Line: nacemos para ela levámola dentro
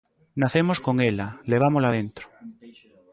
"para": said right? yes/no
no